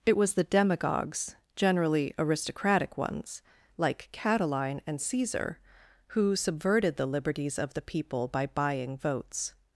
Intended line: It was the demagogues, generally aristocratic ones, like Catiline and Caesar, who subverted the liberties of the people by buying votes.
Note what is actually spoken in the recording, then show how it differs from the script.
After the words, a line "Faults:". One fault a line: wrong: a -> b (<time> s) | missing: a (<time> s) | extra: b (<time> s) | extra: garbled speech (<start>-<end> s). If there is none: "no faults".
It was the demagogues, generally aristocratic ones, like Catiline and Caesar, who subverted the liberties of the people by buying votes.
Faults:
no faults